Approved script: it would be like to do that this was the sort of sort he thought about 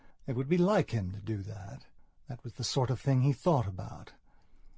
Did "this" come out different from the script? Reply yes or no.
yes